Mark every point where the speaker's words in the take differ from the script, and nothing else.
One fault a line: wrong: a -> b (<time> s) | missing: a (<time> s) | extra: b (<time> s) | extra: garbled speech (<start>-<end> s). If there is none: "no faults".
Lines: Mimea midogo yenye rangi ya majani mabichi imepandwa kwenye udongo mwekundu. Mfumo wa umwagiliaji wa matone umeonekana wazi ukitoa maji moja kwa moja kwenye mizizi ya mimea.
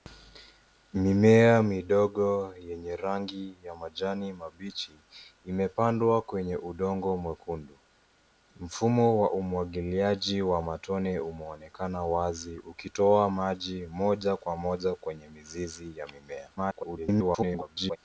extra: garbled speech (16.6-18.0 s)